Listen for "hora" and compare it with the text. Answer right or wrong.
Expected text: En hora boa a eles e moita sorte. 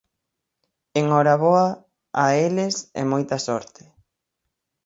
right